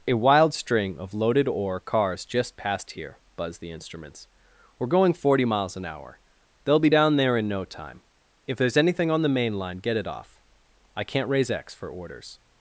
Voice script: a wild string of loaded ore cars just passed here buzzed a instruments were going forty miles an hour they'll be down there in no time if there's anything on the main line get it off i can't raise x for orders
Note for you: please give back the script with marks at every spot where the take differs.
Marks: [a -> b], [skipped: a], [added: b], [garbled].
a wild string of loaded ore cars just passed here buzzed [a -> the] instruments were going forty miles an hour they'll be down there in no time if there's anything on the main line get it off i can't raise x for orders